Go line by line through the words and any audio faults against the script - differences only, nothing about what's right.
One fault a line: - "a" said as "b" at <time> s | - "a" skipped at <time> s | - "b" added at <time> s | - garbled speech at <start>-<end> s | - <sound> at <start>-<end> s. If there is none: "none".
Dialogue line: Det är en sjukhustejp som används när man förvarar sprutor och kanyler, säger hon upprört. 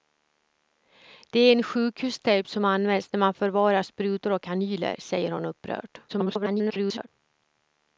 - garbled speech at 6.1-7.1 s